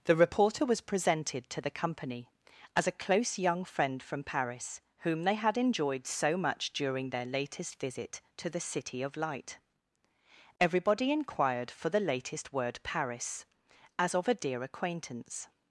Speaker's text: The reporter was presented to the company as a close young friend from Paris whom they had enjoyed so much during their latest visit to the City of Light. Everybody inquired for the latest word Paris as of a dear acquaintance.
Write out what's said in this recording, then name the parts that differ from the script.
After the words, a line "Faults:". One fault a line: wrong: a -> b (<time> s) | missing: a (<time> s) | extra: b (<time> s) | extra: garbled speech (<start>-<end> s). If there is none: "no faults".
The reporter was presented to the company as a close young friend from Paris whom they had enjoyed so much during their latest visit to the City of Light. Everybody inquired for the latest word Paris as of a dear acquaintance.
Faults:
no faults